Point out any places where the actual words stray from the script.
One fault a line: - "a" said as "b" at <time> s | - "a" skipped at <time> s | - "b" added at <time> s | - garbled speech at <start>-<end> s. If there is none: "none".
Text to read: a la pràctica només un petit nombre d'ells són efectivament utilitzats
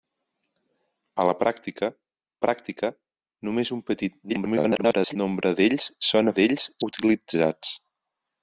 - "pràctica" added at 2.4 s
- garbled speech at 4.3-5.2 s
- "efectivament" said as "d'ells" at 6.4 s